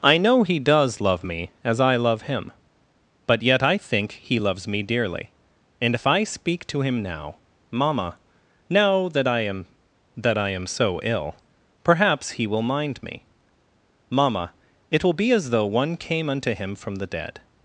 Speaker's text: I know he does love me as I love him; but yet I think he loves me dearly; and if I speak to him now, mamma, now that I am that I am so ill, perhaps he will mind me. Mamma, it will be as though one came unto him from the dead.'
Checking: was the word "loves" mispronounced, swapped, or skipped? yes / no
no